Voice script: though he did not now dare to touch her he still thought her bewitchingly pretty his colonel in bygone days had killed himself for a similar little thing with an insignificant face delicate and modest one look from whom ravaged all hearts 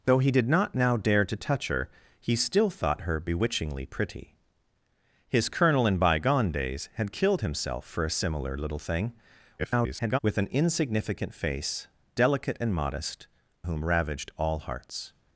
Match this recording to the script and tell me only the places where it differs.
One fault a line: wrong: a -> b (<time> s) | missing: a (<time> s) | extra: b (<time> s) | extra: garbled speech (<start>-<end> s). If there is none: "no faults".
extra: garbled speech (9.6-10.2 s)
missing: one look from (13.3 s)